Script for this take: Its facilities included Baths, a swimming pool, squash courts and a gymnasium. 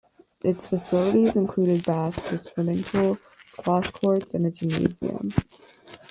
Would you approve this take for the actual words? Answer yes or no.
yes